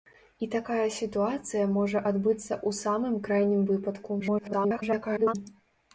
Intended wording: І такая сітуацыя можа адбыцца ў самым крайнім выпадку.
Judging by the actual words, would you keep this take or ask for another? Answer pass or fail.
fail